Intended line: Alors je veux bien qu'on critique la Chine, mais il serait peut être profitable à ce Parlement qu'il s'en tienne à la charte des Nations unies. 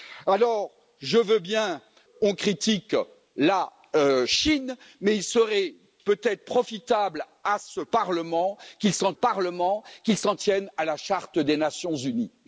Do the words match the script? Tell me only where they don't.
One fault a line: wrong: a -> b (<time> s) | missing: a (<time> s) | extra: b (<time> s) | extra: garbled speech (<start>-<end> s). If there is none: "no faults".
extra: Parlement qu'il s'en (9.1 s)